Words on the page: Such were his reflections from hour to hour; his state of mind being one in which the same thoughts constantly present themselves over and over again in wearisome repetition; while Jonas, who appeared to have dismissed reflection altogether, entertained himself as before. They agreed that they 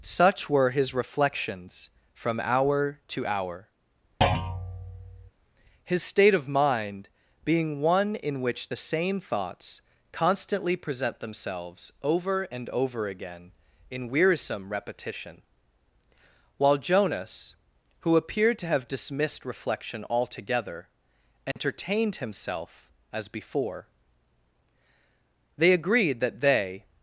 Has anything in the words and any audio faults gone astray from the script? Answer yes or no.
yes